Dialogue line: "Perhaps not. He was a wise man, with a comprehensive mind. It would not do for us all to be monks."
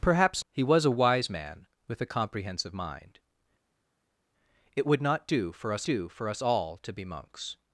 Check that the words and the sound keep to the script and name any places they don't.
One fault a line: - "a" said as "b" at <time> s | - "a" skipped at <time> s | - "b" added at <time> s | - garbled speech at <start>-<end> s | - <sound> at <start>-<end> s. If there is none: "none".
- "not" skipped at 0.4 s
- "do for us" added at 5.8 s